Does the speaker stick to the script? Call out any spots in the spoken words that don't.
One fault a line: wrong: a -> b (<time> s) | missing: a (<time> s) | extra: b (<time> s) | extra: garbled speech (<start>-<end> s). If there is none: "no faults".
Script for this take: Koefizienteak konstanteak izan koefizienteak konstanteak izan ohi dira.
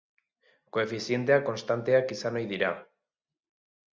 missing: koefizienteak konstanteak izan (2.4 s)